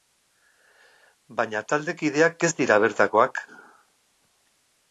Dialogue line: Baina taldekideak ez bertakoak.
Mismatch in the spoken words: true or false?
true